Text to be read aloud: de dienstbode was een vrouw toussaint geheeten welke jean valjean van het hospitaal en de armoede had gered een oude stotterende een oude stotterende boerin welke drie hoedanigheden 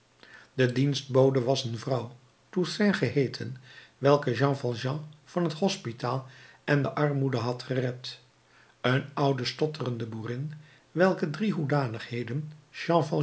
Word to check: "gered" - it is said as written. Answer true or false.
true